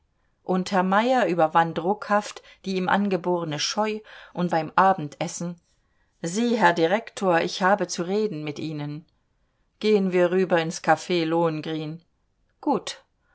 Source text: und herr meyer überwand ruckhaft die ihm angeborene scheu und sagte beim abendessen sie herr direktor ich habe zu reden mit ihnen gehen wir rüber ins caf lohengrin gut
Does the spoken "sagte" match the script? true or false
false